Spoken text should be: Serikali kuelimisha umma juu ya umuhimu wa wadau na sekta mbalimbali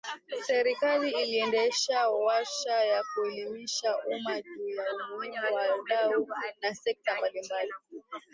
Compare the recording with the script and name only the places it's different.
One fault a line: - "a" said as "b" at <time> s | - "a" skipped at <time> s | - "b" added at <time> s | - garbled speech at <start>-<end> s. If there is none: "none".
- "iliendesha warsha ya" added at 1.1 s